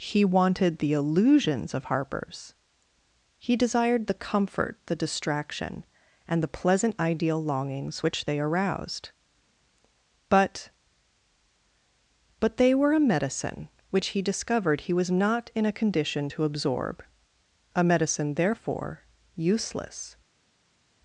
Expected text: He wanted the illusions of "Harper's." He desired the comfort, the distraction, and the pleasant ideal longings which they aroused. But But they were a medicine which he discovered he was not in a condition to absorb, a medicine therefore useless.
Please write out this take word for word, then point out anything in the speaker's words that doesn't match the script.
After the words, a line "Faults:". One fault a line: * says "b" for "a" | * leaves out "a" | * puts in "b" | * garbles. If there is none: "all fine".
He wanted the illusions of "Harper's." He desired the comfort, the distraction, and the pleasant ideal longings which they aroused. But But they were a medicine which he discovered he was not in a condition to absorb, a medicine therefore useless.
Faults:
all fine